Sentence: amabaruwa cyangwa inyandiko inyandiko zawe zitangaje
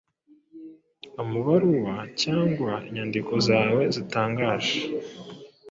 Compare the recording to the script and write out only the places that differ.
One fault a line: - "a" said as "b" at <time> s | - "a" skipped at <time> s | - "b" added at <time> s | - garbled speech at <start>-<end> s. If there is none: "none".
- "inyandiko" skipped at 3.3 s